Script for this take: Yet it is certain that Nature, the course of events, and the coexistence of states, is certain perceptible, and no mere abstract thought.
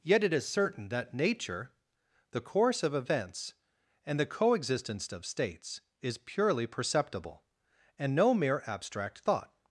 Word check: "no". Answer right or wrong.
right